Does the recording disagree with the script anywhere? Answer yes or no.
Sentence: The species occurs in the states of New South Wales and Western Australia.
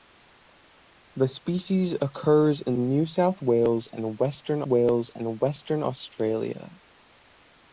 yes